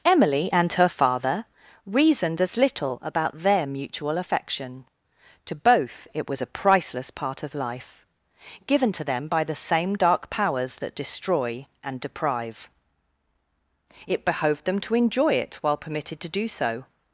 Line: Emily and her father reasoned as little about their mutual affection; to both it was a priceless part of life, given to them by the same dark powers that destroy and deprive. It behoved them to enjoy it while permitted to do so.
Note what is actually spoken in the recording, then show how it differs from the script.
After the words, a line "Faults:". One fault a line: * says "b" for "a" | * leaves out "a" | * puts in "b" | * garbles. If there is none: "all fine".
Emily and her father reasoned as little about their mutual affection; to both it was a priceless part of life, given to them by the same dark powers that destroy and deprive. It behoved them to enjoy it while permitted to do so.
Faults:
all fine